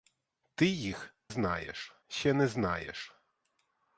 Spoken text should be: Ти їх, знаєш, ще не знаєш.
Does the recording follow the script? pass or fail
pass